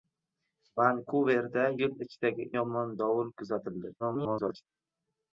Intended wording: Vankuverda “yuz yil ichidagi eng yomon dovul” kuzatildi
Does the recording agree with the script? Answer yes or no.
no